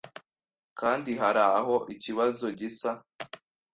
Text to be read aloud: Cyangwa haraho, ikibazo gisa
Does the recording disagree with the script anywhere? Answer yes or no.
yes